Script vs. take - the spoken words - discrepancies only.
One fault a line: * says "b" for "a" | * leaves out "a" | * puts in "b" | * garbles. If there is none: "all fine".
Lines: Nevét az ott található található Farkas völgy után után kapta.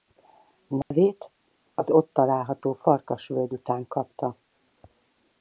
* leaves out "található"
* leaves out "után"